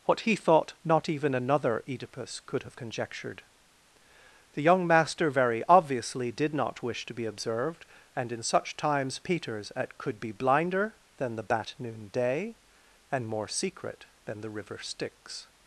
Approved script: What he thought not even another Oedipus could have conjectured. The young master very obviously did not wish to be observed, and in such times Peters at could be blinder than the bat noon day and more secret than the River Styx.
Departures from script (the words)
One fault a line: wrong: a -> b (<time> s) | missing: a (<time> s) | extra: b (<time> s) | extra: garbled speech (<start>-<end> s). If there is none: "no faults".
no faults